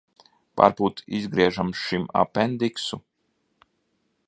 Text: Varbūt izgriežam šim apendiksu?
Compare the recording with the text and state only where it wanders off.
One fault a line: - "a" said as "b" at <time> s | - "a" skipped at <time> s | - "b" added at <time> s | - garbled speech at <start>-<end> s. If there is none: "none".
none